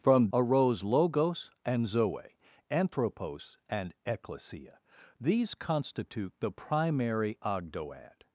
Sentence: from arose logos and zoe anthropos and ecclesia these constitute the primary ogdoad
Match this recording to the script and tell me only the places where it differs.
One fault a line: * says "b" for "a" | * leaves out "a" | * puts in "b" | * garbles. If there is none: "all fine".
all fine